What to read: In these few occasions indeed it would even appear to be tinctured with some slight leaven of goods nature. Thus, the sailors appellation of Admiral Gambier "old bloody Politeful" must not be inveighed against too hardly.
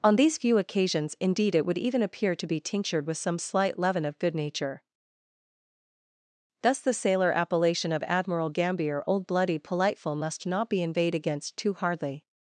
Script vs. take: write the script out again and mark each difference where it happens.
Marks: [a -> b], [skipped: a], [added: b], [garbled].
[In -> On] these few occasions indeed it would even appear to be tinctured with some slight leaven of [goods -> good] nature. Thus, the [sailors -> sailor] appellation of Admiral Gambier "old bloody Politeful" must not be inveighed against too hardly.